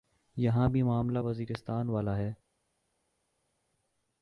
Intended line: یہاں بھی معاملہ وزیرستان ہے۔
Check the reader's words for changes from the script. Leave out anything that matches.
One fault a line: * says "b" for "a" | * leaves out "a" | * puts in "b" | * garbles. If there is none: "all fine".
* puts in "والا"